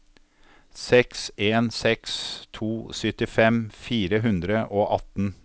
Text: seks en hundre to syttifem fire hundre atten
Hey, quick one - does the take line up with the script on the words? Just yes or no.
no